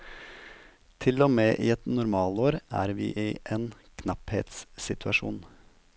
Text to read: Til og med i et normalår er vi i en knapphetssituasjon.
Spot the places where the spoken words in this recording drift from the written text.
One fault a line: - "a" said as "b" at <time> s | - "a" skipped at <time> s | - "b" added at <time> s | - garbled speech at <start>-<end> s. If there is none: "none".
none